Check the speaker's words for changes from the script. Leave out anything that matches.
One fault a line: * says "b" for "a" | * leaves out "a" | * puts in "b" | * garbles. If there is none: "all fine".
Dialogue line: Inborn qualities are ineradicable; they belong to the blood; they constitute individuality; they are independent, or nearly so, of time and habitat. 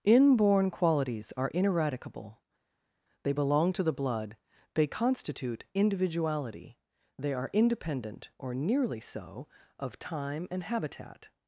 all fine